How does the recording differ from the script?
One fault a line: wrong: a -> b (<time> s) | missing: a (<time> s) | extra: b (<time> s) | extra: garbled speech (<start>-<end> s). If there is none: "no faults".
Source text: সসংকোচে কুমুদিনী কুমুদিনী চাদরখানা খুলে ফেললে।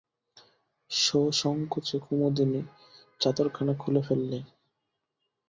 missing: কুমুদিনী (2.6 s)